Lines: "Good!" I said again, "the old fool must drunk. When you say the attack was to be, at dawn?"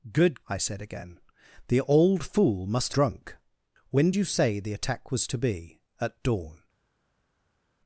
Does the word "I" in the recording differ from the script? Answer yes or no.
no